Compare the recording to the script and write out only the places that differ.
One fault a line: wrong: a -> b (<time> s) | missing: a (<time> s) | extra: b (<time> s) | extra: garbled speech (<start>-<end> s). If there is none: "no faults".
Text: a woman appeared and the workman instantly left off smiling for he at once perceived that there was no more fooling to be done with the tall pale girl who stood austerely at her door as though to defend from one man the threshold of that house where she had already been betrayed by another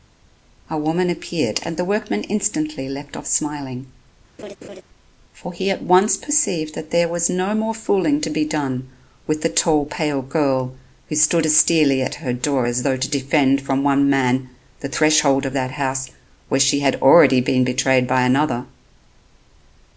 no faults